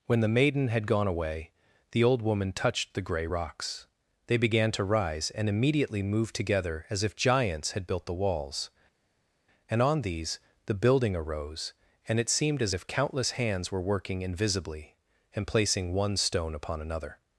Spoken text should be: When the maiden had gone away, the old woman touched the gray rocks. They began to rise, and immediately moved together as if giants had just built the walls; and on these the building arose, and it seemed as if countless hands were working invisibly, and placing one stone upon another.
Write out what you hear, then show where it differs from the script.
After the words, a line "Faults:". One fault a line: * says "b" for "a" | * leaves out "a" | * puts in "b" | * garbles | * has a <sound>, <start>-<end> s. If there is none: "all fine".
When the maiden had gone away, the old woman touched the gray rocks. They began to rise, and immediately moved together as if giants had built the walls; and on these the building arose, and it seemed as if countless hands were working invisibly, and placing one stone upon another.
Faults:
* leaves out "just"